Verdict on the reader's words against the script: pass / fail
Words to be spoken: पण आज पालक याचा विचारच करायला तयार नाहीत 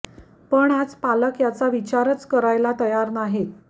pass